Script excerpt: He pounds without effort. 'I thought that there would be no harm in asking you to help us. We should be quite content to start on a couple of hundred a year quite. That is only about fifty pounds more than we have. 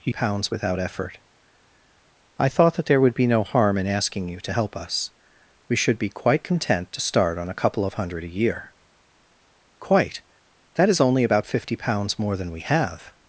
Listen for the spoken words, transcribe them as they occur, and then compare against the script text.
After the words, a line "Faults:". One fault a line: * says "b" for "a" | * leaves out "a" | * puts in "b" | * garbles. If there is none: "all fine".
He pounds without effort. 'I thought that there would be no harm in asking you to help us. We should be quite content to start on a couple of hundred a year quite. That is only about fifty pounds more than we have.
Faults:
all fine